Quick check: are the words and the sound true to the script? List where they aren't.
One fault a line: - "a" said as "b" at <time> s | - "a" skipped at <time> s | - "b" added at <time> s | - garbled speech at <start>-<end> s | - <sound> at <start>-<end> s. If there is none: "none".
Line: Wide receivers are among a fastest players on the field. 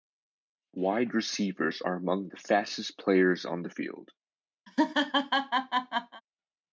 - "a" said as "the" at 2.3 s
- laugh at 4.7-6.2 s